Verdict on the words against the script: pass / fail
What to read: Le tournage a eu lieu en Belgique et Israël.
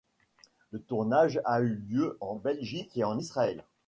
fail